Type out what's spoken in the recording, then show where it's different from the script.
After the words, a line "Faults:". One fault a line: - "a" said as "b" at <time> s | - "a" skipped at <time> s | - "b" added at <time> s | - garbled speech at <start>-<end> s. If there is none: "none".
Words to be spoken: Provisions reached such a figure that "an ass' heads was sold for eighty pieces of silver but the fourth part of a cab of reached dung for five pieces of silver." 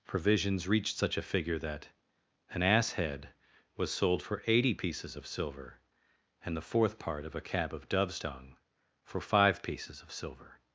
Provisions reached such a figure that "an ass' head was sold for eighty pieces of silver and the fourth part of a cab of dove's dung for five pieces of silver."
Faults:
- "heads" said as "head" at 2.9 s
- "but" said as "and" at 6.4 s
- "reached" said as "dove's" at 7.9 s